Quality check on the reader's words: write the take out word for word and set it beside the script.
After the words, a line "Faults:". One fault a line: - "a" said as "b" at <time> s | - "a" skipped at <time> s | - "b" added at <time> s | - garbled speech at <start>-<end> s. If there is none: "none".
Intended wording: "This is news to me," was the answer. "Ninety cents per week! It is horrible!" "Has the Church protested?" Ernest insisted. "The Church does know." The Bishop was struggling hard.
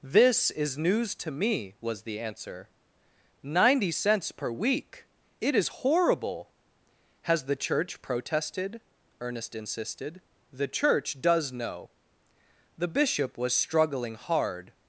"This is news to me," was the answer. "Ninety cents per week! It is horrible!" "Has the Church protested?" Ernest insisted. "The Church does know." The Bishop was struggling hard.
Faults:
none